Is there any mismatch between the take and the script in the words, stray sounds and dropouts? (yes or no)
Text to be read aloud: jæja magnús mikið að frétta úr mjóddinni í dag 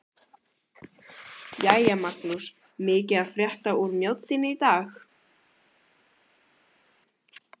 no